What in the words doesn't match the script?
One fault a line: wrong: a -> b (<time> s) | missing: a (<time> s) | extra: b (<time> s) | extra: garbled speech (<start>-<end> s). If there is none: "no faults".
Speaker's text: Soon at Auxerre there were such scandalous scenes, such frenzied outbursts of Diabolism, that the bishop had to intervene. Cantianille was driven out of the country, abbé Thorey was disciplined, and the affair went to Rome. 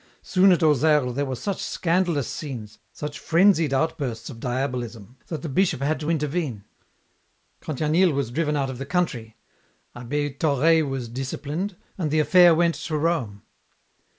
no faults